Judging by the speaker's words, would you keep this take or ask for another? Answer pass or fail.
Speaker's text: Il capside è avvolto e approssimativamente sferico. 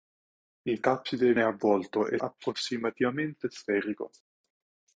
pass